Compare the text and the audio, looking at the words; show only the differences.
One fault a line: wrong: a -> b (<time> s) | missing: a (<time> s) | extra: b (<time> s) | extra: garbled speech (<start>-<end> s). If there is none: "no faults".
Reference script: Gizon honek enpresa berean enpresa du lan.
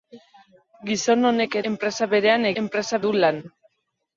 no faults